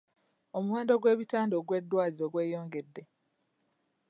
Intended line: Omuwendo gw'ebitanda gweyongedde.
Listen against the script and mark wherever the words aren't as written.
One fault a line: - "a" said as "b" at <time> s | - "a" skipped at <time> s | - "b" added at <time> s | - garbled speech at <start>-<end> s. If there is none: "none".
- "ogw'eddwaliro" added at 1.6 s